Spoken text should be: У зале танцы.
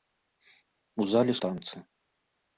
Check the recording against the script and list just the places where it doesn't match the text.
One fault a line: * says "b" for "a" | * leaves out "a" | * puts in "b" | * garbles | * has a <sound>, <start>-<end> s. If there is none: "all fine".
all fine